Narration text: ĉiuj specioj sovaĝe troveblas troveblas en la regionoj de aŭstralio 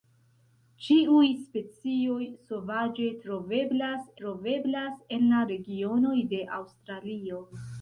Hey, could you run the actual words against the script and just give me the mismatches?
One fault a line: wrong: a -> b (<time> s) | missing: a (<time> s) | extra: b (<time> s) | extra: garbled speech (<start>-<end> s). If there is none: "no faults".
no faults